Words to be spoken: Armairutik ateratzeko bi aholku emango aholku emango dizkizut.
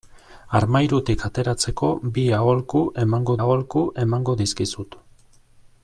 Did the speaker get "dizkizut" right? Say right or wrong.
right